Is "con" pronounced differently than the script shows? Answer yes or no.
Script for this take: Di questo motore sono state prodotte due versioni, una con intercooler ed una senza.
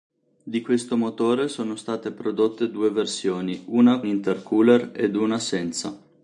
yes